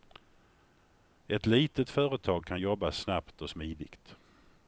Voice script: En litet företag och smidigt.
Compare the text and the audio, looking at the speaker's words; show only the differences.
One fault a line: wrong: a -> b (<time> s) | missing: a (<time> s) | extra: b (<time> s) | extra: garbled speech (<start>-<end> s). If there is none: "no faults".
wrong: En -> Ett (1.3 s)
extra: kan jobba snabbt (2.5 s)